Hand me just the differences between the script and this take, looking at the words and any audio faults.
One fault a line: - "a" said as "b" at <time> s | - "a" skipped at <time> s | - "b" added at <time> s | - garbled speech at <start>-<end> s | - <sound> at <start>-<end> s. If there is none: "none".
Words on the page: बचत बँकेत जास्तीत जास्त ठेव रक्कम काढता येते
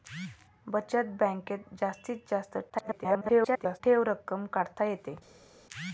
- garbled speech at 2.7-3.8 s